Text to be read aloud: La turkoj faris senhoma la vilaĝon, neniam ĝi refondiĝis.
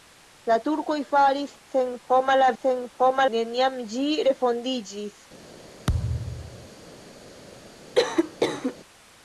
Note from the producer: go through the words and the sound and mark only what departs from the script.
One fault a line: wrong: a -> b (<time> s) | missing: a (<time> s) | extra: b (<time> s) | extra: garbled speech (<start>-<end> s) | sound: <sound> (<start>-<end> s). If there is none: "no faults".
wrong: vilaĝon -> senhoma (2.6 s)
sound: thud (5.9-6.7 s)
sound: cough (7.9-8.7 s)